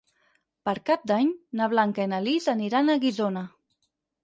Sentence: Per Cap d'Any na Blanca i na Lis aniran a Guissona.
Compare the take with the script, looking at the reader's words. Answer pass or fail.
pass